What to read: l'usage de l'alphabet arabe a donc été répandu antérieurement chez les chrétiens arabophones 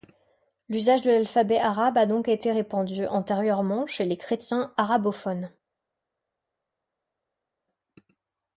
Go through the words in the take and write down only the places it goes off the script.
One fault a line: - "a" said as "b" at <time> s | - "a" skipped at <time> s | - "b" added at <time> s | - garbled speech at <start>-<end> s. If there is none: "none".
none